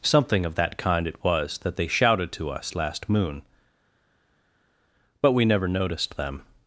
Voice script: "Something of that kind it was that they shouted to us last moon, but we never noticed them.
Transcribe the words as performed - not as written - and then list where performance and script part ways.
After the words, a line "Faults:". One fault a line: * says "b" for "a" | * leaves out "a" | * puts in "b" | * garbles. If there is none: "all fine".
"Something of that kind it was that they shouted to us last moon, but we never noticed them.
Faults:
all fine